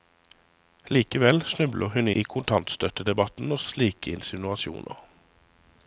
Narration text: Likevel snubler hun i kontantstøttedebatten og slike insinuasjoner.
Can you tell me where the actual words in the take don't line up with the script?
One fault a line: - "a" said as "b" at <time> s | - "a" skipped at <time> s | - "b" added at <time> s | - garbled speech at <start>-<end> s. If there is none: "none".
none